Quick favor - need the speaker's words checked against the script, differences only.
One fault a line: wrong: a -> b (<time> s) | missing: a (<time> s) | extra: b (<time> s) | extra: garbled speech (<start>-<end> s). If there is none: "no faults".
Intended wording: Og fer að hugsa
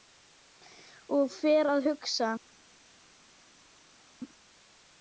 no faults